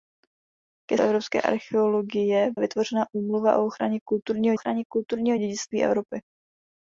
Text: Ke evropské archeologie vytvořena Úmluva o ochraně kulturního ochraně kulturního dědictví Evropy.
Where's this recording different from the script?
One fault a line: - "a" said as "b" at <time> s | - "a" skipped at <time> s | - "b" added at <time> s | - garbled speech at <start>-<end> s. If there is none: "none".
none